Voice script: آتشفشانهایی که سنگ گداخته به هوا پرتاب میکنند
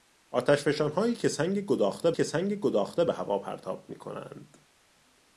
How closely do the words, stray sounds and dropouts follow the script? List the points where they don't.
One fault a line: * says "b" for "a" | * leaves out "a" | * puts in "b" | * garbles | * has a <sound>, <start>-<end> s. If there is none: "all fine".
* puts in "که سنگ گداخته"